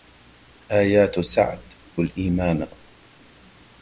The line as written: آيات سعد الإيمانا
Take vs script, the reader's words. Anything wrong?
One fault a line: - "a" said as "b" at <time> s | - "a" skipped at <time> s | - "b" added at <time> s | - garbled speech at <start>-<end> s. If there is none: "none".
none